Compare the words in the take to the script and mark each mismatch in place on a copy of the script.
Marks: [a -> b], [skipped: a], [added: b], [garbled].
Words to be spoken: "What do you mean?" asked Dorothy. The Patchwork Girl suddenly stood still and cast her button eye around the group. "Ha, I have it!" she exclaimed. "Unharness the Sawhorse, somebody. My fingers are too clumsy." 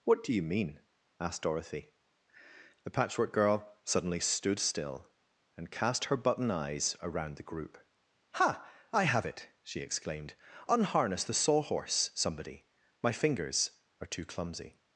"What do you mean?" asked Dorothy. The Patchwork Girl suddenly stood still and cast her button [eye -> eyes] around the group. "Ha, I have it!" she exclaimed. "Unharness the Sawhorse, somebody. My fingers are too clumsy."